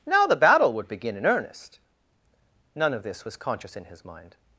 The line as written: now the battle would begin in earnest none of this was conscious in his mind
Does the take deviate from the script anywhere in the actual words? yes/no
no